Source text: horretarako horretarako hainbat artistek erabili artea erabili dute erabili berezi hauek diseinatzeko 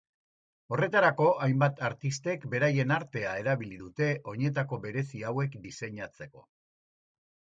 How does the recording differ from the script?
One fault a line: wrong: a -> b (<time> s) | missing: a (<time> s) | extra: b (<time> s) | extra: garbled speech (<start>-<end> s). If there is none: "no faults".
missing: horretarako (1.2 s)
wrong: erabili -> beraien (2.5 s)
wrong: erabili -> oinetako (4.3 s)